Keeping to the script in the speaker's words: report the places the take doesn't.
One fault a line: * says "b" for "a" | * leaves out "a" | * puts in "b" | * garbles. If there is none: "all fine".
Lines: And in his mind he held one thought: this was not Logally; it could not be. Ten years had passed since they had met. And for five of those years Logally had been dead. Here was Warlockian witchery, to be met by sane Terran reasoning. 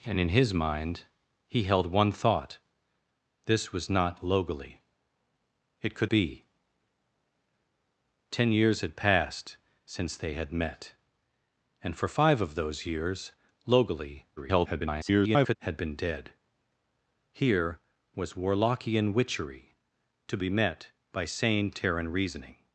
* leaves out "not"
* garbles